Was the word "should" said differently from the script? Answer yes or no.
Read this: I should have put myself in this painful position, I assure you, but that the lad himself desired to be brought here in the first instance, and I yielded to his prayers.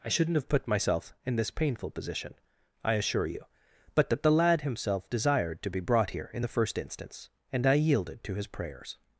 yes